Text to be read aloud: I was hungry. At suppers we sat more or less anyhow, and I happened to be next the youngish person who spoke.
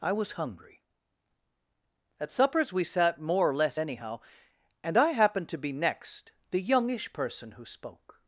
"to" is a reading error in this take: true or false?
false